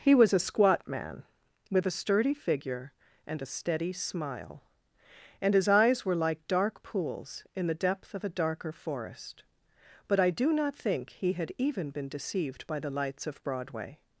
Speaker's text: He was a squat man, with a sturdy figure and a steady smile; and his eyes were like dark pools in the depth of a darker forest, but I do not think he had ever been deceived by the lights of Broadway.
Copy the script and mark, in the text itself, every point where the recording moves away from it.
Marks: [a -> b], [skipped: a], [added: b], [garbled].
He was a squat man, with a sturdy figure and a steady smile; and his eyes were like dark pools in the depth of a darker forest, but I do not think he had [ever -> even] been deceived by the lights of Broadway.